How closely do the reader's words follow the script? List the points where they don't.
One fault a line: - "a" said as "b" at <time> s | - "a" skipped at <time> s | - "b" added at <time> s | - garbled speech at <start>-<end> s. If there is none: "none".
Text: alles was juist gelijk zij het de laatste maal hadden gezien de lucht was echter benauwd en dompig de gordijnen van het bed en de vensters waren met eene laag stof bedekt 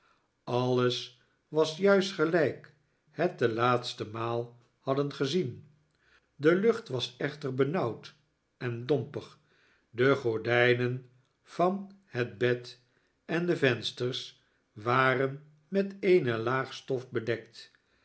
- "zij" skipped at 2.7 s